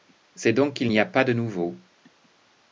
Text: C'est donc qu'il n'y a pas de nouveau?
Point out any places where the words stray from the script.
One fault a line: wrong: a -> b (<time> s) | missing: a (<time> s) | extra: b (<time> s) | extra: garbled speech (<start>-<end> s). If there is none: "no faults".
no faults